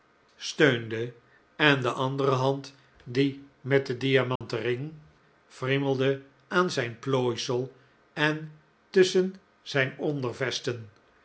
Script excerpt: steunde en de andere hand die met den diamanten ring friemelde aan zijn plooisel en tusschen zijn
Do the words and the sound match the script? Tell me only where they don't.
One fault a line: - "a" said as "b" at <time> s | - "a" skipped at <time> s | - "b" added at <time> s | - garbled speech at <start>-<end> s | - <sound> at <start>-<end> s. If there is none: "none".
- dropout at 4.4-4.4 s